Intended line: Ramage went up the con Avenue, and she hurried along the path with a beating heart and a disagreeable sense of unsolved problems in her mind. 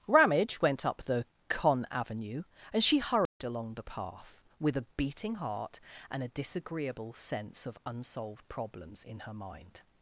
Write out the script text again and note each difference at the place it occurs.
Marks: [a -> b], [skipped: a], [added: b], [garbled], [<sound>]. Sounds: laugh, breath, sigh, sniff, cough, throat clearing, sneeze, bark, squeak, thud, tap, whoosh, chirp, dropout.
Ramage went up the con Avenue, and she hurried [dropout] along the path with a beating heart and a disagreeable sense of unsolved problems in her mind.